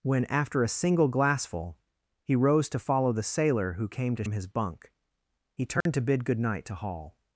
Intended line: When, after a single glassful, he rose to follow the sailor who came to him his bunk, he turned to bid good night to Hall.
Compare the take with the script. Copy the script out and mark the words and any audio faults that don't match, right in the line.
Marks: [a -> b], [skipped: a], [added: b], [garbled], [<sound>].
When, after a single glassful, he rose to follow the sailor who came to him his bunk, he turned [dropout] to bid good night to Hall.